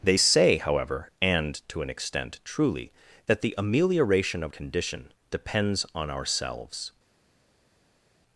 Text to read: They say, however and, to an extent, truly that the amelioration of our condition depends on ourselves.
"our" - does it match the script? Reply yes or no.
no